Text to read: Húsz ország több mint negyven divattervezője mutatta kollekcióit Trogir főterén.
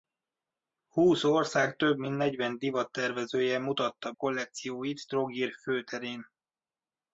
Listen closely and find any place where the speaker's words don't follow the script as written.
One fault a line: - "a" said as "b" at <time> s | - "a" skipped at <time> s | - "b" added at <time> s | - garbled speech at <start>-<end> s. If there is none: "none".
none